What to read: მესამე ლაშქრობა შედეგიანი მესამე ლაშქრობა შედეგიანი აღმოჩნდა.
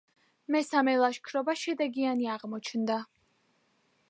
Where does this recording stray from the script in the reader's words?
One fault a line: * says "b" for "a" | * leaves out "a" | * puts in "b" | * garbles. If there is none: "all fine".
* leaves out "მესამე ლაშქრობა შედეგიანი"